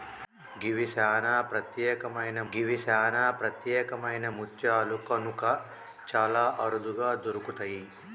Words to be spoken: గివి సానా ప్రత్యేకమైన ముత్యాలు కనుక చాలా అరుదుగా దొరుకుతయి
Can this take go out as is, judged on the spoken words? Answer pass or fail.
fail